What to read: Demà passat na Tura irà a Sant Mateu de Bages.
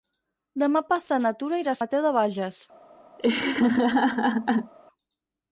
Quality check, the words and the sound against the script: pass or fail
fail